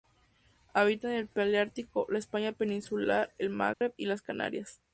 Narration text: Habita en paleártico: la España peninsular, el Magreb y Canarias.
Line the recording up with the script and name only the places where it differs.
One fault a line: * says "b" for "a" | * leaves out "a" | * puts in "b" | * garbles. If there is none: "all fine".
* puts in "el"
* puts in "las"